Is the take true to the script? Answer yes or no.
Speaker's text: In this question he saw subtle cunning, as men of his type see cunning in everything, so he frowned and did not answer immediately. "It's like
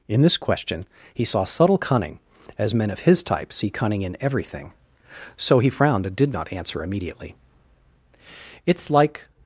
yes